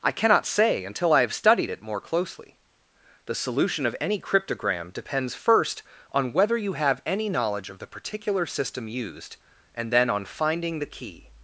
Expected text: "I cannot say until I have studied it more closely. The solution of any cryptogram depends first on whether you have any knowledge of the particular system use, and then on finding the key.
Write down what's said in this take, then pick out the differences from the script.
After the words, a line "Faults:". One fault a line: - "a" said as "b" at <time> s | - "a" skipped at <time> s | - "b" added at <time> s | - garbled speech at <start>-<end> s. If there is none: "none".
"I cannot say until I have studied it more closely. The solution of any cryptogram depends first on whether you have any knowledge of the particular system used, and then on finding the key.
Faults:
- "use" said as "used" at 8.9 s